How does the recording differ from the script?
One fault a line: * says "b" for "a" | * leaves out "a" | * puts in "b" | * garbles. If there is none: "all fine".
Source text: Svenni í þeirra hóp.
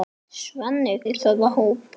all fine